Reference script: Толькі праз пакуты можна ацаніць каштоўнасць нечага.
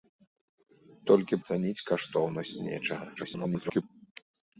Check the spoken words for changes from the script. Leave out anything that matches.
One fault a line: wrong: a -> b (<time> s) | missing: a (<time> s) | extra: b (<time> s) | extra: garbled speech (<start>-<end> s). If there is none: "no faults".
missing: праз пакуты можна (1.4 s)
extra: garbled speech (3.2-3.8 s)